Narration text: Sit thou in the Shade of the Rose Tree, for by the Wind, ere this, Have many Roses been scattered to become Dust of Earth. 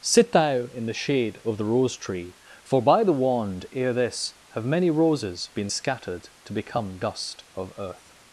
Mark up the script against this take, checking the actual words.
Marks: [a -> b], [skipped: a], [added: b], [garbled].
Sit thou in the Shade of the Rose Tree, for by the [Wind, -> Wand] ere this, Have many Roses been scattered to become Dust of Earth.